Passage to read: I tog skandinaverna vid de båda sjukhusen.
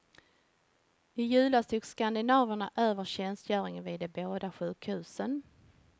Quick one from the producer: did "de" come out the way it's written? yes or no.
yes